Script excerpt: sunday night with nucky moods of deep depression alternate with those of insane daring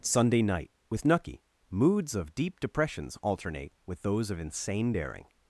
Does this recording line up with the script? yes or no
no